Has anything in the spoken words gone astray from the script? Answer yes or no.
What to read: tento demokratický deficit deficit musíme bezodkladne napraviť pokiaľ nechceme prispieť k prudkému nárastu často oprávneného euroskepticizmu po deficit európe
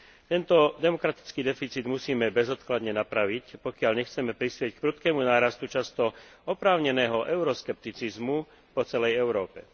yes